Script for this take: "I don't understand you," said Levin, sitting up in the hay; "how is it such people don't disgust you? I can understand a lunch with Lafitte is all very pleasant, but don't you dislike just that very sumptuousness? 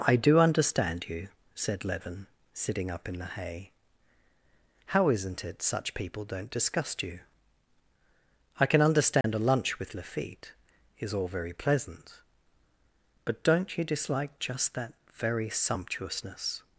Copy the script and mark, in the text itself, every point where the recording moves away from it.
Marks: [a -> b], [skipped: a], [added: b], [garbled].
"I [don't -> do] understand you," said Levin, sitting up in the hay; "how [is -> isn't] it such people don't disgust you? I can understand a lunch with Lafitte is all very pleasant, but don't you dislike just that very sumptuousness?